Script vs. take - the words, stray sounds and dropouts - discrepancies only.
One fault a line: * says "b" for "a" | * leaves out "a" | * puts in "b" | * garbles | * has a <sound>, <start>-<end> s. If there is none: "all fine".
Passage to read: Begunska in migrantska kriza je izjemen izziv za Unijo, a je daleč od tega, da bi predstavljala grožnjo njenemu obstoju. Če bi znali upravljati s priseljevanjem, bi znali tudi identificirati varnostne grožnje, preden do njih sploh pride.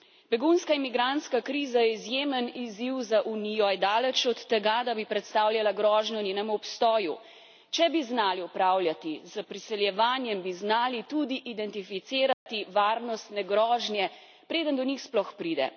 * has a dropout, 12.3-12.5 s